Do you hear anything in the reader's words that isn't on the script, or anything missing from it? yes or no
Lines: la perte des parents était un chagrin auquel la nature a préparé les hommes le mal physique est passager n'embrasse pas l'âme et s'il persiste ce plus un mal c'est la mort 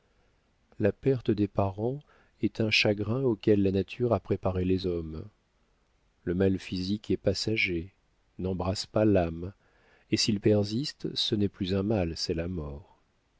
yes